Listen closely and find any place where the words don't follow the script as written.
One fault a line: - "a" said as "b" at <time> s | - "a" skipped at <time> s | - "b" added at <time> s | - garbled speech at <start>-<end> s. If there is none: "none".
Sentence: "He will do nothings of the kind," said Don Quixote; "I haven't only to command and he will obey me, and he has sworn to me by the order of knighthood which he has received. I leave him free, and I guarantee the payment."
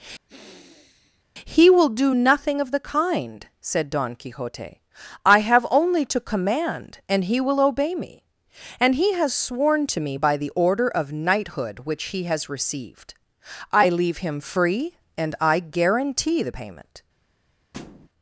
- "nothings" said as "nothing" at 2.1 s
- "haven't" said as "have" at 5.4 s